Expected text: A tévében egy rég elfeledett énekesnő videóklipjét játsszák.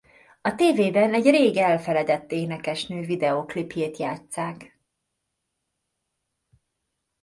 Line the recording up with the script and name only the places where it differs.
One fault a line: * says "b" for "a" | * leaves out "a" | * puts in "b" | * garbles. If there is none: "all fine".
all fine